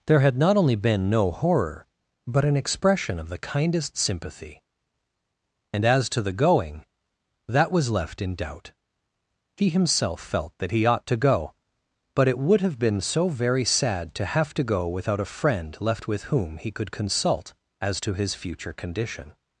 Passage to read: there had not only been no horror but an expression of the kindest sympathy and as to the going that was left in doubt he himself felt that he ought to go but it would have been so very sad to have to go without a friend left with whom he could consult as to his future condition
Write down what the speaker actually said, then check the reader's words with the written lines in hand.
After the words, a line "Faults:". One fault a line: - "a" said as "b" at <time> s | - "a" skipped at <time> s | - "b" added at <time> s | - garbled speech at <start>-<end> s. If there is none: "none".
there had not only been no horror but an expression of the kindest sympathy and as to the going that was left in doubt he himself felt that he ought to go but it would have been so very sad to have to go without a friend left with whom he could consult as to his future condition
Faults:
none